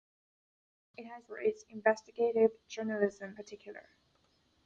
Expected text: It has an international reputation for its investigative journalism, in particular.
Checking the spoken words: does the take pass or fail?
fail